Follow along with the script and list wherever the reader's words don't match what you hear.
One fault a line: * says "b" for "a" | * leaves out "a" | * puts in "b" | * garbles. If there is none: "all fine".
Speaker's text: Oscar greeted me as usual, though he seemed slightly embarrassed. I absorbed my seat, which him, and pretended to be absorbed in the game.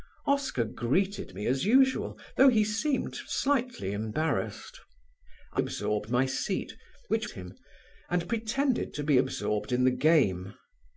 all fine